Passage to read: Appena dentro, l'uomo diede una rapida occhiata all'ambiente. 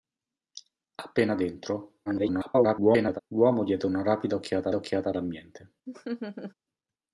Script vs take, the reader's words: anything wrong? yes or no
yes